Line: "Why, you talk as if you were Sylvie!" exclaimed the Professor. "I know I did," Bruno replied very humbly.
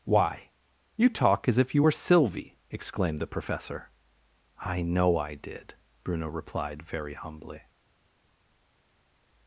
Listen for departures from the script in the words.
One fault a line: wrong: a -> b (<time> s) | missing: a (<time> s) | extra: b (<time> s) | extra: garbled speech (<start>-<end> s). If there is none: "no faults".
no faults